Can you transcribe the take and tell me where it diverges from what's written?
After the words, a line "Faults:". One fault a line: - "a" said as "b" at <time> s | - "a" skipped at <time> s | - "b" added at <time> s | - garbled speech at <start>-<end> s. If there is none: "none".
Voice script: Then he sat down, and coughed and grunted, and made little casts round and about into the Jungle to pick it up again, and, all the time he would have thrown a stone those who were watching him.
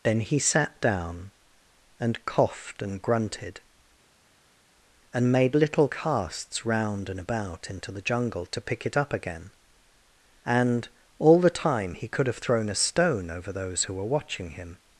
Then he sat down, and coughed and grunted, and made little casts round and about into the Jungle to pick it up again, and, all the time he could have thrown a stone over those who were watching him.
Faults:
- "would" said as "could" at 12.1 s
- "over" added at 13.3 s